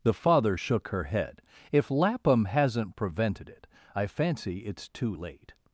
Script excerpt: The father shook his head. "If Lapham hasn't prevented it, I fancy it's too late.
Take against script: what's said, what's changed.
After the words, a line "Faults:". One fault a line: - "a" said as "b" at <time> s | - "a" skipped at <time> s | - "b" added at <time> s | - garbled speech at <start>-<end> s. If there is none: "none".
The father shook her head. "If Lapham hasn't prevented it, I fancy it's too late.
Faults:
- "his" said as "her" at 0.9 s